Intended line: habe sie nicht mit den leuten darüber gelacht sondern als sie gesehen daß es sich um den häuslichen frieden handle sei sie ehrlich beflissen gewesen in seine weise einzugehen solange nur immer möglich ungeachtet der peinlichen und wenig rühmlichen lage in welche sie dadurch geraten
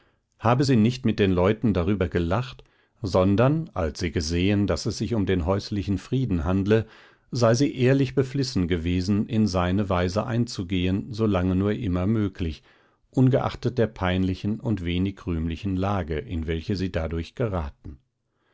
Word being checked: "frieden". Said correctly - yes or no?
yes